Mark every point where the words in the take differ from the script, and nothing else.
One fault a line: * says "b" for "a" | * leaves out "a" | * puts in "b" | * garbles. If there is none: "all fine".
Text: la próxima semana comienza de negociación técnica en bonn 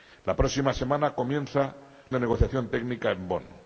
all fine